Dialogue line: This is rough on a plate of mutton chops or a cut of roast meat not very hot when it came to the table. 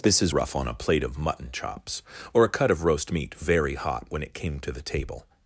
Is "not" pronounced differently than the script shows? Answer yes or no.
yes